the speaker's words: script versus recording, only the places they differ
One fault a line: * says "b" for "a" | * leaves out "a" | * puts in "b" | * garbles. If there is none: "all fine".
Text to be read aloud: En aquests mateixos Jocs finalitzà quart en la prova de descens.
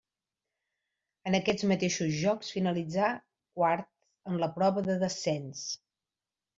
all fine